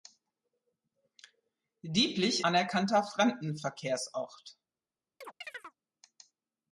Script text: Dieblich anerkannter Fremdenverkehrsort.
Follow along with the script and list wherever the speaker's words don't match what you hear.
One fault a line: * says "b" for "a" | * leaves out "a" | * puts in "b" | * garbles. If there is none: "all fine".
all fine